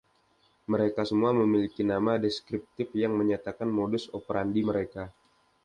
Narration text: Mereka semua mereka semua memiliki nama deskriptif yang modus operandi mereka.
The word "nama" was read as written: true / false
true